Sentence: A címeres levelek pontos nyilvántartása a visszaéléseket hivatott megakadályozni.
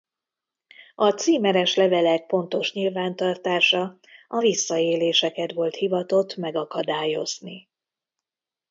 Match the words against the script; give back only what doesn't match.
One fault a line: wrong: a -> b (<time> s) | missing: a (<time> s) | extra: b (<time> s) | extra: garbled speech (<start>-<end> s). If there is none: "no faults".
extra: volt (5.5 s)